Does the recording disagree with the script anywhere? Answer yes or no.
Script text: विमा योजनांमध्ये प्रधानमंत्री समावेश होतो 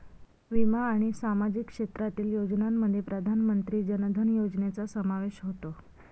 yes